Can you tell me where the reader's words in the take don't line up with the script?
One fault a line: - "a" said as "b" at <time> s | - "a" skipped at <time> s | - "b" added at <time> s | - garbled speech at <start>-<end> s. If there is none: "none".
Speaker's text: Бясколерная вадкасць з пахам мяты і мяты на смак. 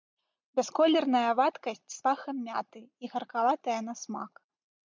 - "мяты" said as "гаркаватая" at 3.2 s